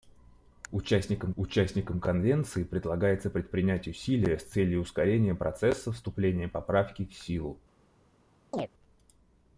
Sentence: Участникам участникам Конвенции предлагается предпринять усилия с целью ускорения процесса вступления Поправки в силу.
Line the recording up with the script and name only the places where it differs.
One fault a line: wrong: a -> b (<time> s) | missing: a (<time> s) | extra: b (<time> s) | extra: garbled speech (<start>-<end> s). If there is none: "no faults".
no faults